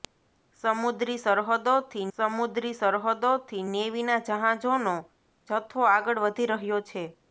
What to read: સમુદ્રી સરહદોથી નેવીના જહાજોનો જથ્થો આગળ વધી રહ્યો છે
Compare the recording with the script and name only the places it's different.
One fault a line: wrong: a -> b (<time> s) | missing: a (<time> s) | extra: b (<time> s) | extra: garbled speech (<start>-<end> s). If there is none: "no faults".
extra: સમુદ્રી સરહદોથી (2.2 s)